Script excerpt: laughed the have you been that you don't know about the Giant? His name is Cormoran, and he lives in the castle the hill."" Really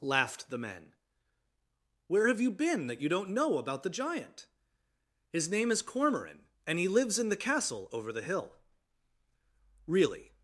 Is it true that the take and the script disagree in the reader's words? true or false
true